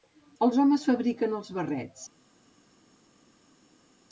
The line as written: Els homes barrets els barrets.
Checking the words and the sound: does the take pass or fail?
fail